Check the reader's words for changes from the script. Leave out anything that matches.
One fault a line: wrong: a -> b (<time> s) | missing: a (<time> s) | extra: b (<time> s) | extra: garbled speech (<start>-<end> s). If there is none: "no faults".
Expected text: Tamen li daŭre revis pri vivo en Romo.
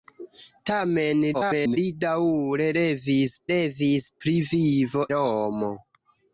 extra: garbled speech (1.3-1.8 s)
extra: revis (3.5 s)
missing: en (5.1 s)